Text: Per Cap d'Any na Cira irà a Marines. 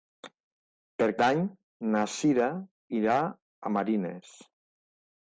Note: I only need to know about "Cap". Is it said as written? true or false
false